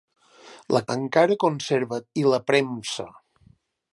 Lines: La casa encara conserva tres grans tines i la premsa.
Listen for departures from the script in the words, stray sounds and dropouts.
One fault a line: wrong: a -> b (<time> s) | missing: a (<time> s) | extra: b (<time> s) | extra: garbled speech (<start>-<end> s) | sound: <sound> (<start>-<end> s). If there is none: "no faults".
missing: casa (0.8 s)
missing: tres grans tines (2.0 s)